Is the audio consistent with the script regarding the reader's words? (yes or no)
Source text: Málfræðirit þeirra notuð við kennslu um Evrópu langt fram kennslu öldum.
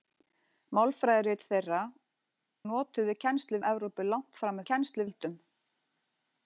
yes